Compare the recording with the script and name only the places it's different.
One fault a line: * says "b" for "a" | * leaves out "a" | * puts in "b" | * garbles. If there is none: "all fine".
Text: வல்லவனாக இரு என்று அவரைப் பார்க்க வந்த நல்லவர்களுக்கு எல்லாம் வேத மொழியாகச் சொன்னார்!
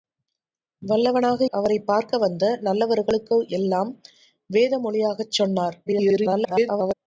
* leaves out "இரு என்று"
* garbles